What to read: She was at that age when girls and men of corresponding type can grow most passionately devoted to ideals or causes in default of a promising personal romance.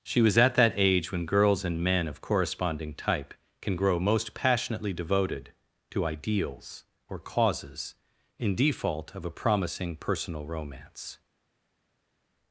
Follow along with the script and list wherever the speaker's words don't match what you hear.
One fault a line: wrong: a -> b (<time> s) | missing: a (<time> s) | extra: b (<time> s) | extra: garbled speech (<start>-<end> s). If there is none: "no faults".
no faults